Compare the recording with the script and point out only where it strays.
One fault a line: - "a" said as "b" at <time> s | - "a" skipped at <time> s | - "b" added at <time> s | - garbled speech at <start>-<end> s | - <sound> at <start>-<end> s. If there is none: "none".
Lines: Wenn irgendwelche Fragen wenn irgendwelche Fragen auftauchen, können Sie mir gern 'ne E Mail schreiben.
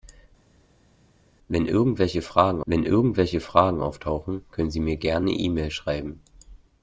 none